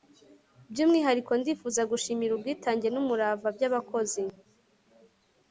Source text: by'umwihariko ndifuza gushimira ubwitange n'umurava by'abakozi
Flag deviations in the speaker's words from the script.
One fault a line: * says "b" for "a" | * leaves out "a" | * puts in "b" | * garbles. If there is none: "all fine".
all fine